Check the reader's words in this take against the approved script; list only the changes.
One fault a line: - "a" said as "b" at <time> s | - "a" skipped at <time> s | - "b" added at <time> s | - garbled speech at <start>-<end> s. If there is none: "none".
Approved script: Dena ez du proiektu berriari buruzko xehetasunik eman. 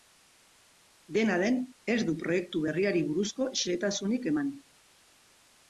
- "den" added at 1.4 s